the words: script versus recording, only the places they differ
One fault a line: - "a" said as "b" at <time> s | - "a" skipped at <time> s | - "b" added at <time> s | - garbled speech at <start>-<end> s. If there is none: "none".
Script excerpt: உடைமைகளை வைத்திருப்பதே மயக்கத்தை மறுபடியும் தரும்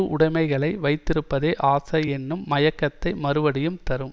- "ஆசை என்னும்" added at 1.7 s